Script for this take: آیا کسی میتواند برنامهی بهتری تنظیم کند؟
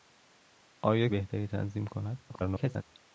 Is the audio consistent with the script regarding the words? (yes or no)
no